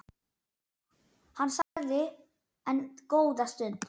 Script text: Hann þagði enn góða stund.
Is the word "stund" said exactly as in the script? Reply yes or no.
yes